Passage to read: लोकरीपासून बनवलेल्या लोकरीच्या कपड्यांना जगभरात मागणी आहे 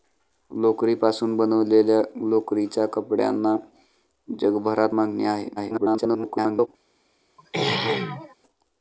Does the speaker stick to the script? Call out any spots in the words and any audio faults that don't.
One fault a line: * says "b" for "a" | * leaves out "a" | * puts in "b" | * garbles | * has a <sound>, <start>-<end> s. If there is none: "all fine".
* garbles
* has a throat clearing, 7.4-8.4 s